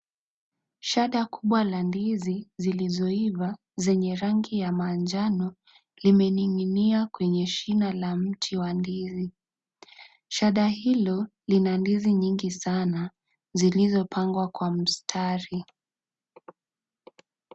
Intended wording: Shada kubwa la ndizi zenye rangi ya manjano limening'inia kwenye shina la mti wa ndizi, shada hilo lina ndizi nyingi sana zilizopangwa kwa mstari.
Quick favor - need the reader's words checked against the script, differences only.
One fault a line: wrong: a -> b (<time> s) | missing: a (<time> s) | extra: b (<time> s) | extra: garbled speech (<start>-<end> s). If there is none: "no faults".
extra: zilizoiva (2.6 s)